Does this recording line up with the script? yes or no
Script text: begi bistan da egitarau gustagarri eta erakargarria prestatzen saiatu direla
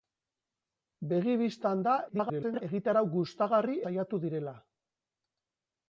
no